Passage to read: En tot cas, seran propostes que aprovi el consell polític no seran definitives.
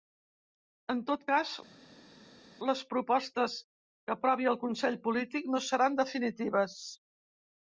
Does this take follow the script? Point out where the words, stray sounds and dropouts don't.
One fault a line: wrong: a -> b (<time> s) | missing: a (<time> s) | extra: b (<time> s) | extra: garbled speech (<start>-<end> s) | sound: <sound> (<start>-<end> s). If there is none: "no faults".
wrong: seran -> les (2.7 s)